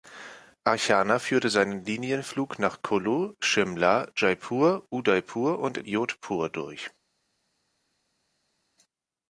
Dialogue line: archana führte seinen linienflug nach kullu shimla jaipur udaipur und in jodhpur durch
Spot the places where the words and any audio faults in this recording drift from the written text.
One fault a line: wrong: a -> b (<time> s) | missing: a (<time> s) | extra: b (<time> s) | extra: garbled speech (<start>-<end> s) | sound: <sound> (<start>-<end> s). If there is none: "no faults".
no faults